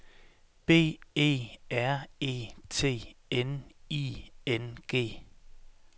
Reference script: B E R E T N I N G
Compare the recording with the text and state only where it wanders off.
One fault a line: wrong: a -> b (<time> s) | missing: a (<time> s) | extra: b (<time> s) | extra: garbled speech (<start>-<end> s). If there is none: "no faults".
no faults